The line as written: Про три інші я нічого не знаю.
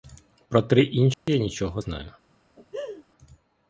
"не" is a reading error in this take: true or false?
true